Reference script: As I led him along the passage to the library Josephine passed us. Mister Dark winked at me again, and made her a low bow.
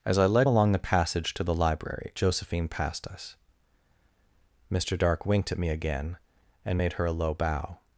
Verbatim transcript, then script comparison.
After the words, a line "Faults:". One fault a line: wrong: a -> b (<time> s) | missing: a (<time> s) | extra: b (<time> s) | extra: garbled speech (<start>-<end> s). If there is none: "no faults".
As I led along the passage to the library Josephine passed us. Mister Dark winked at me again, and made her a low bow.
Faults:
missing: him (0.5 s)